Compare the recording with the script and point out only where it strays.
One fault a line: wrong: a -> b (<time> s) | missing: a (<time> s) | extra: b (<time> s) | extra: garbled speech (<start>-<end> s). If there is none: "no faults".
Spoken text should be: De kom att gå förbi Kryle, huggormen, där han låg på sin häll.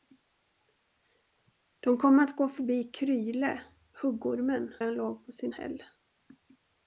missing: där (4.7 s)